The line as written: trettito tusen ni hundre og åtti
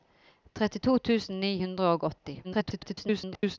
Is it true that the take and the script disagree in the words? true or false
true